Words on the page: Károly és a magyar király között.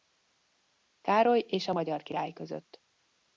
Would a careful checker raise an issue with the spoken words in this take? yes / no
no